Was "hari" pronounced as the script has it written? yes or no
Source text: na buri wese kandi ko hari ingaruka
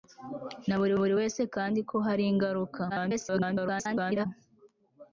yes